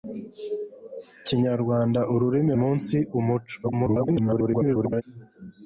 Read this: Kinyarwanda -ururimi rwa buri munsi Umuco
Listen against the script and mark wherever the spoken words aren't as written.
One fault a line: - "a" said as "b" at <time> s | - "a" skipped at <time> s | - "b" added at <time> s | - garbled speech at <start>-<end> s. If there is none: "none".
- "rwa buri" skipped at 2.5 s
- garbled speech at 3.6-5.0 s